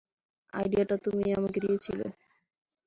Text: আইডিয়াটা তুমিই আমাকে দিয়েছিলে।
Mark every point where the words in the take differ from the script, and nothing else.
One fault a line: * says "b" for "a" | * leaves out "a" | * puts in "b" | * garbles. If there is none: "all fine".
all fine